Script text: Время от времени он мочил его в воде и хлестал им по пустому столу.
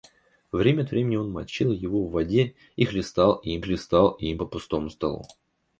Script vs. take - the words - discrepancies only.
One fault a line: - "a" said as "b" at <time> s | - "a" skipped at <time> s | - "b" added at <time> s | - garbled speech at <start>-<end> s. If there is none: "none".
- "хлестал им" added at 3.6 s